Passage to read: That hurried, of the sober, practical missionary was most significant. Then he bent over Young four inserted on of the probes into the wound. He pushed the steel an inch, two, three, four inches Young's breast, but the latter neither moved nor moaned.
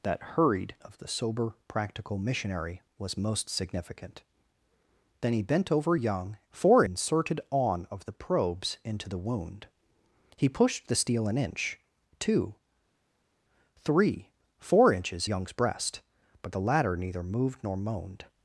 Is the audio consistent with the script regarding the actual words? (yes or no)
yes